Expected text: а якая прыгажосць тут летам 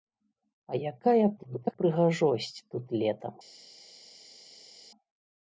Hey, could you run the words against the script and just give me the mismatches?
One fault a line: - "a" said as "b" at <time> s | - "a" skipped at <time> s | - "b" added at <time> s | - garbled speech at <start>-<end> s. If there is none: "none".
- garbled speech at 1.4-1.8 s